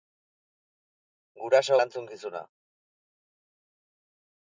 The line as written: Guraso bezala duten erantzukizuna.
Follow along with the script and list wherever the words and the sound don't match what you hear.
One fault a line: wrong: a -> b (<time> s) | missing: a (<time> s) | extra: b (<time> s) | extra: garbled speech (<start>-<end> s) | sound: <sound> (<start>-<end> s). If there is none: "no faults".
missing: bezala duten (1.8 s)